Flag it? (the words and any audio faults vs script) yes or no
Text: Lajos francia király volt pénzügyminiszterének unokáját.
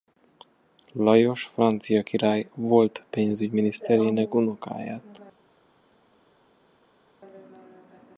no